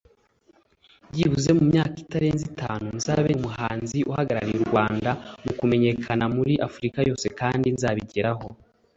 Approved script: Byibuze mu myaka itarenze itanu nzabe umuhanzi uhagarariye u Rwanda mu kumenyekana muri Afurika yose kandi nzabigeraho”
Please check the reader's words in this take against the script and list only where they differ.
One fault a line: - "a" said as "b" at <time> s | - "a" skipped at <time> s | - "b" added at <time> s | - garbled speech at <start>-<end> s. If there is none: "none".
none